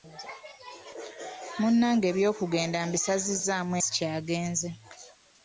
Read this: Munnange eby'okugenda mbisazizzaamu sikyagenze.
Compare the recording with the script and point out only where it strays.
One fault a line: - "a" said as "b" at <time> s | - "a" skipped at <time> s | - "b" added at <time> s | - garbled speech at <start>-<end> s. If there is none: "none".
none